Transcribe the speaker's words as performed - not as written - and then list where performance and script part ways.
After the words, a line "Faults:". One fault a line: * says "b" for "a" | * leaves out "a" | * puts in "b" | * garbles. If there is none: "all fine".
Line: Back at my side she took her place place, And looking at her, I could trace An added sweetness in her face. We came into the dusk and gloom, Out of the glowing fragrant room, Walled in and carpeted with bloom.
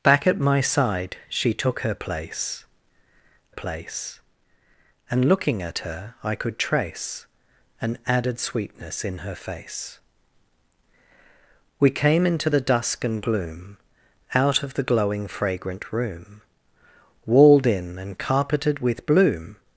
Back at my side she took her place place, And looking at her, I could trace An added sweetness in her face. We came into the dusk and gloom, Out of the glowing fragrant room, Walled in and carpeted with bloom.
Faults:
all fine